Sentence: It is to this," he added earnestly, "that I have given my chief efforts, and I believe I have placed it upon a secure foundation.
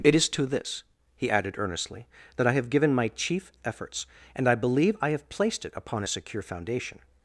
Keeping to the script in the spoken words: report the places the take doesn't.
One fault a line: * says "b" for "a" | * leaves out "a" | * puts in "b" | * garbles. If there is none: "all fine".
all fine